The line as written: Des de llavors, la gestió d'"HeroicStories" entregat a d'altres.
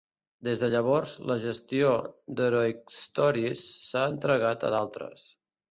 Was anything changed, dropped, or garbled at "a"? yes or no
no